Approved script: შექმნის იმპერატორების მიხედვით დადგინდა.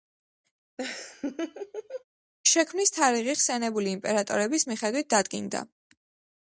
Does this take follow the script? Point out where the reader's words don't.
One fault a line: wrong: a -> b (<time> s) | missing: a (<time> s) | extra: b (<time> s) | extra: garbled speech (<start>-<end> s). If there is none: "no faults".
extra: თარიღი ხსენებული (3.0 s)